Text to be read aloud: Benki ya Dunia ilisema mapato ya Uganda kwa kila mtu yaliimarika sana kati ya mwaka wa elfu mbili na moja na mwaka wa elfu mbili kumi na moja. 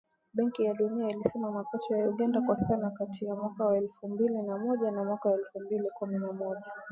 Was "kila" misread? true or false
true